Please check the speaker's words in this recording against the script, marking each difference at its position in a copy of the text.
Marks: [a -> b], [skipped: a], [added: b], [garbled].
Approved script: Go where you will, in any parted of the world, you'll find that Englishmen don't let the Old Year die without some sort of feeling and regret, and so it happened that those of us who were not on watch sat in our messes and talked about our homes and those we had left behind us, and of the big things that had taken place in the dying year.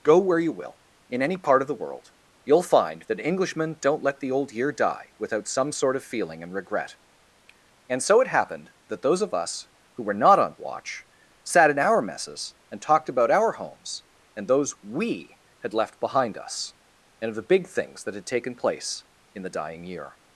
Go where you will, in any [parted -> part] of the world, you'll find that Englishmen don't let the Old Year die without some sort of feeling and regret, and so it happened that those of us who were not on watch sat in our messes and talked about our homes and those we had left behind us, and of the big things that had taken place in the dying year.